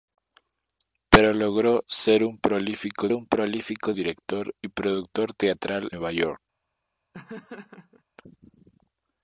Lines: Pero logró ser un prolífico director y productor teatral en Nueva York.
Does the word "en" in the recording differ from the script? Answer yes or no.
yes